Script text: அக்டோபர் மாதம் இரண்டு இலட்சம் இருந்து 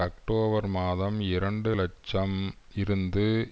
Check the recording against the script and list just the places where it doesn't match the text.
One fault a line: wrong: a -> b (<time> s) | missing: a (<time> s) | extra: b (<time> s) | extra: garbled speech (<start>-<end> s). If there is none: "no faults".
no faults